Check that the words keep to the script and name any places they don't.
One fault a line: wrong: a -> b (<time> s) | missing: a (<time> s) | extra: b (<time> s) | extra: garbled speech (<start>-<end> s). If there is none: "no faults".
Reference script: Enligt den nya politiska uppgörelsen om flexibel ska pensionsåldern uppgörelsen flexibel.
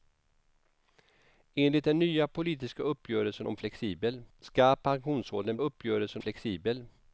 no faults